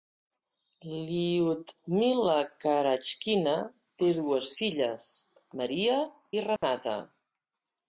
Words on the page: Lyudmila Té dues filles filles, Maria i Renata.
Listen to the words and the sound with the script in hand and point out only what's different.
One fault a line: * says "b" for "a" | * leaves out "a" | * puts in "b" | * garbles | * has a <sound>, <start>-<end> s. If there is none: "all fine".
* puts in "Karachkina"
* leaves out "filles"
* has a dropout, 6.6-6.6 s